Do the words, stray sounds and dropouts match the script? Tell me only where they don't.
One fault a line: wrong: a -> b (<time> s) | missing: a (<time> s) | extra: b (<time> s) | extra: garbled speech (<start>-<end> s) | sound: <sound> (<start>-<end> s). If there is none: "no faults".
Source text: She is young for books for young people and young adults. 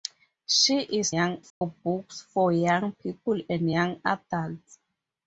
sound: dropout (1.5-1.6 s)